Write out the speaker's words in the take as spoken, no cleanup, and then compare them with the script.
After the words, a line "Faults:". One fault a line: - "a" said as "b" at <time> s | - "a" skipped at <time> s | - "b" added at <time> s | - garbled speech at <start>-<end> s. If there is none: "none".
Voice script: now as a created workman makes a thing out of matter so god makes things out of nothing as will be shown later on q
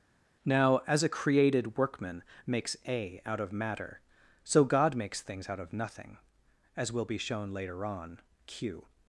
now as a created workman makes a out of matter so god makes things out of nothing as will be shown later on q
Faults:
- "thing" skipped at 3.2 s